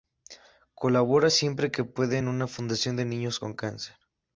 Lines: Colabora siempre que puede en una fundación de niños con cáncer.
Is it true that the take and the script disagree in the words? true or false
false